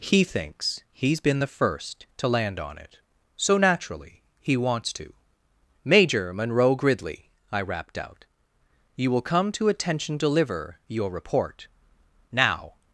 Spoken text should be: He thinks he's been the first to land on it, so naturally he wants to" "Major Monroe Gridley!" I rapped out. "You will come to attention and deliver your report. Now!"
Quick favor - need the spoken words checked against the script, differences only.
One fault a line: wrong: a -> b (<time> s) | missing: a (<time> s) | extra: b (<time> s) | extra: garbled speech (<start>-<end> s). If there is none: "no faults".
missing: and (10.2 s)